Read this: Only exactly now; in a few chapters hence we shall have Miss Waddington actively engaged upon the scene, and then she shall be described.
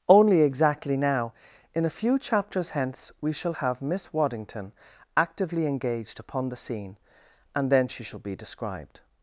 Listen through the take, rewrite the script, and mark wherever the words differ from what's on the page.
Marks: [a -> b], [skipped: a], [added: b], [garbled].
Only exactly now; in a few chapters hence we shall have Miss Waddington actively engaged upon the scene, and then she shall be described.